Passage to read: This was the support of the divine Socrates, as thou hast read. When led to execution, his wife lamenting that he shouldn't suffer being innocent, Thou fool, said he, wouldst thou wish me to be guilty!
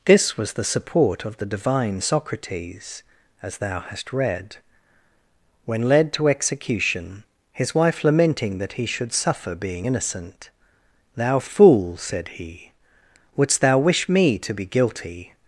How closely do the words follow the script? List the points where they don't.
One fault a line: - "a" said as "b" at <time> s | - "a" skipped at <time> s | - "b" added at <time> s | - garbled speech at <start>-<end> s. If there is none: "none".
- "shouldn't" said as "should" at 8.9 s